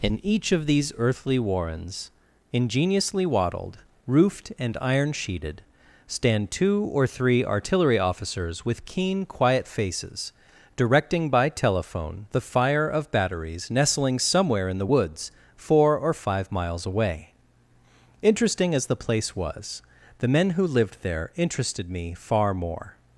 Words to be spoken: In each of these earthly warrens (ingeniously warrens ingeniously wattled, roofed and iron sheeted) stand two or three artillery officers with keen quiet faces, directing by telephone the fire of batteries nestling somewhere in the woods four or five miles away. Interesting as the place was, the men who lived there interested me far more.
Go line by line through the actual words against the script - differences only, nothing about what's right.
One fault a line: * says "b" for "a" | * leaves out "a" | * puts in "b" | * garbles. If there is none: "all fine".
* leaves out "warrens ingeniously"